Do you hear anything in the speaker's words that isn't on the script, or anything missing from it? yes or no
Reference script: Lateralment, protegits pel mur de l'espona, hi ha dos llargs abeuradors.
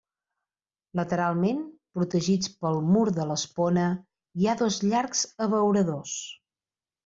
no